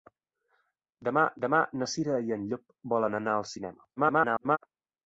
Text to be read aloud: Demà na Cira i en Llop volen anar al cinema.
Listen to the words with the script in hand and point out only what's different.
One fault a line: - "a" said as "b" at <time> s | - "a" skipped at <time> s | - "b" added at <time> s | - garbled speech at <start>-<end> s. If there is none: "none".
- "demà" added at 1.5 s
- garbled speech at 4.0-4.6 s